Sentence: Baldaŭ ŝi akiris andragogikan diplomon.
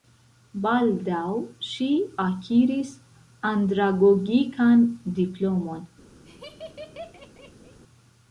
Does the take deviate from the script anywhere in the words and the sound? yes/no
yes